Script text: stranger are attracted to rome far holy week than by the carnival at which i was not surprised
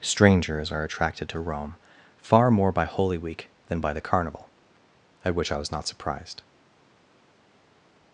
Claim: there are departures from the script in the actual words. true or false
true